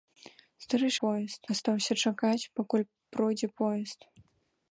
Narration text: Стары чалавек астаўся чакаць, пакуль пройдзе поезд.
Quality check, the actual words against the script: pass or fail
fail